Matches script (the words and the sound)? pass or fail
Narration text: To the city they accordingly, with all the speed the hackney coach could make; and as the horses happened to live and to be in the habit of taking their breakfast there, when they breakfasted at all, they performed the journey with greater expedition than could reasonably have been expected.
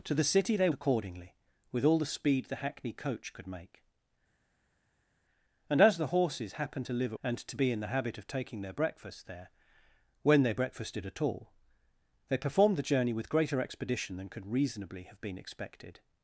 pass